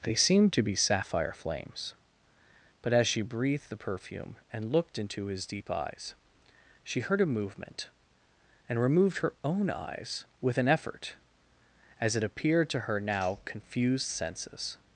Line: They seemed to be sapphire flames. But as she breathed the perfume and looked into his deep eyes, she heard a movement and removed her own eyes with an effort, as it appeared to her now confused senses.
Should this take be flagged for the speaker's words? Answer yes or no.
no